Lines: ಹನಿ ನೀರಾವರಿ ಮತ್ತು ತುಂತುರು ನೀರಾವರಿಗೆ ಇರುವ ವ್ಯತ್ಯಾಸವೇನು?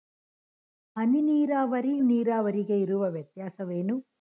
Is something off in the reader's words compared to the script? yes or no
yes